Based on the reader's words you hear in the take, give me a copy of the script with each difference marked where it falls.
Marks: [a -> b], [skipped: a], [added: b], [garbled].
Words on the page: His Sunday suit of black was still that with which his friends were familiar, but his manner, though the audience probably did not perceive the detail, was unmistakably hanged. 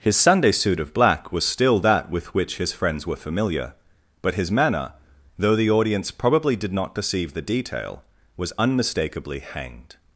His Sunday suit of black was still that with which his friends were familiar, but his manner, though the audience probably did not perceive the detail, was unmistakably hanged.